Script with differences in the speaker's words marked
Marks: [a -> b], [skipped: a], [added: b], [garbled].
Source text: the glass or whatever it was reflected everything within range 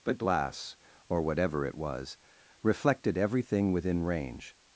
[the -> but] glass or whatever it was reflected everything within range